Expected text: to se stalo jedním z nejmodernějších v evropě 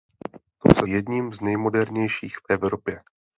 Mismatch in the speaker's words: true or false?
true